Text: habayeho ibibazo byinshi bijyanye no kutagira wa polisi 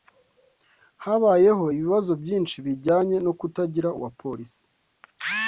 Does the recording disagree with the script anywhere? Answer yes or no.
no